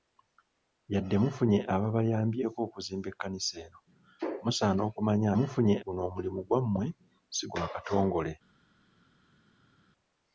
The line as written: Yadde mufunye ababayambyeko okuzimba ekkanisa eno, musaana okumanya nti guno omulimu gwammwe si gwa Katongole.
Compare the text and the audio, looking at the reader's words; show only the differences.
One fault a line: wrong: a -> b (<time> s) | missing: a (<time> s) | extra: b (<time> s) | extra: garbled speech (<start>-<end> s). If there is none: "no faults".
wrong: nti -> mufunye (5.4 s)